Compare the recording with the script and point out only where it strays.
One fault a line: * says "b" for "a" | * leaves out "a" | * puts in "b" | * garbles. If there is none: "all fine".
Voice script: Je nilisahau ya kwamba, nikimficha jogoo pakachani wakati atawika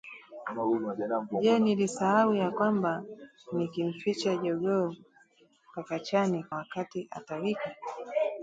all fine